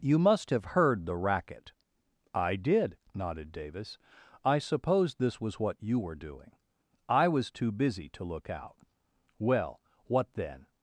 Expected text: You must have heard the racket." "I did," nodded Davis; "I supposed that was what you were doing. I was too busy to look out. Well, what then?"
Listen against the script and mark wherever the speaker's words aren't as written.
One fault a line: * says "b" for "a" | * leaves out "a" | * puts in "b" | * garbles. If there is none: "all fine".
* says "this" for "that"